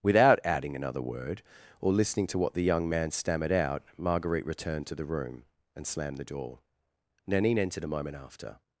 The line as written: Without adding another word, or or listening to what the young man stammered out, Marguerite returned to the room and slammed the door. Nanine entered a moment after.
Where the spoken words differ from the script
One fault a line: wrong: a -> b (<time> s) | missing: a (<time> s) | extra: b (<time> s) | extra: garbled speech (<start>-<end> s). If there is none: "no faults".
missing: or (1.9 s)